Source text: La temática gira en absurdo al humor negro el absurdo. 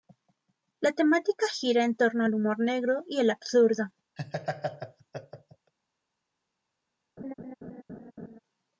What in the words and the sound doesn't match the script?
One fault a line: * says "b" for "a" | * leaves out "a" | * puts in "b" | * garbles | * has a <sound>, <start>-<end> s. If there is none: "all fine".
* says "torno" for "absurdo"
* puts in "y"
* has a laugh, 4.2-5.7 s
* has a laugh, 7.2-8.4 s